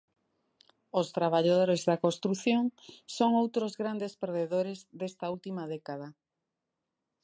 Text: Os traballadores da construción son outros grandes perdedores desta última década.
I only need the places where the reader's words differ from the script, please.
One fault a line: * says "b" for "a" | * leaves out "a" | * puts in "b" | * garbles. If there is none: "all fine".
all fine